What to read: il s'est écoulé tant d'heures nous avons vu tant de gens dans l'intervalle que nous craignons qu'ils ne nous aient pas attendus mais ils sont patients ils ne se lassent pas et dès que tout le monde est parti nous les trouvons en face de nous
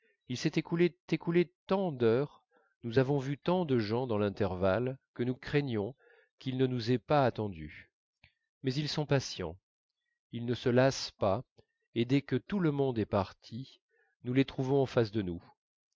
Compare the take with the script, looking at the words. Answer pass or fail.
fail